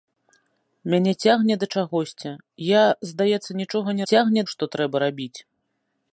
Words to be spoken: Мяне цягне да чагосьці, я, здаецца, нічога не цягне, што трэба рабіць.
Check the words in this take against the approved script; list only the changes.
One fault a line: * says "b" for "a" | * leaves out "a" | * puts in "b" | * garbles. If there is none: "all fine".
all fine